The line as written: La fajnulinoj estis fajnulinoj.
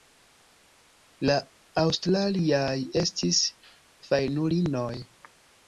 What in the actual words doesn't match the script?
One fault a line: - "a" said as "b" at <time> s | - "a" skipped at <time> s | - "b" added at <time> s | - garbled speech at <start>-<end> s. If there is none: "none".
- "fajnulinoj" said as "aŭstraliaj" at 1.8 s